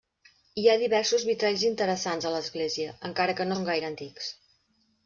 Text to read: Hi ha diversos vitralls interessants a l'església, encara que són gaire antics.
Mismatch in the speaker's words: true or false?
false